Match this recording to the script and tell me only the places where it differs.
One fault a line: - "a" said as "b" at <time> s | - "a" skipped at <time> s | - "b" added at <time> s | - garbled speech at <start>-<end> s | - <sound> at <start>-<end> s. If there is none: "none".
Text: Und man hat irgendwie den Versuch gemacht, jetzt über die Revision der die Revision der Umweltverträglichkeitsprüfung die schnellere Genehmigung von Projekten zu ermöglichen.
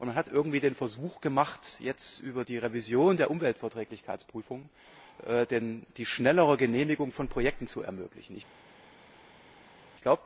- "die Revision der" skipped at 3.3 s